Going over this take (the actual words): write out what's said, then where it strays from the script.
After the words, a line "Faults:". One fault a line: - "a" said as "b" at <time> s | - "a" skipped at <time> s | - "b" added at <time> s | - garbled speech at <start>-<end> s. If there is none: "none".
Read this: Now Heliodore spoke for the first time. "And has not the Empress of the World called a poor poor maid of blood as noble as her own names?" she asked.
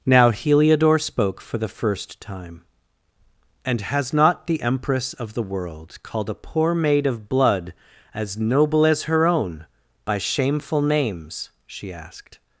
Now Heliodore spoke for the first time. "And has not the Empress of the World called a poor maid of blood as noble as her own by shameful names?" she asked.
Faults:
- "poor" skipped at 6.7 s
- "by shameful" added at 10.0 s